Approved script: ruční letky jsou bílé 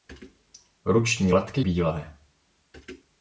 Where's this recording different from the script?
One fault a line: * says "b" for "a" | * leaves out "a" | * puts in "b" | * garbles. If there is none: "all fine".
* leaves out "jsou"